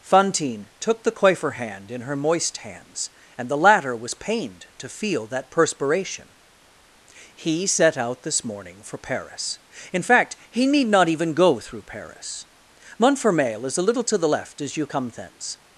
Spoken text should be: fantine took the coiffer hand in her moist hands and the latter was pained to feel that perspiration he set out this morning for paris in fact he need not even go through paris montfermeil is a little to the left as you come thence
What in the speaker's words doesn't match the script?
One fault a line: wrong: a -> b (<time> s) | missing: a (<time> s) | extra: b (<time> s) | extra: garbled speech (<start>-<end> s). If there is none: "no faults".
no faults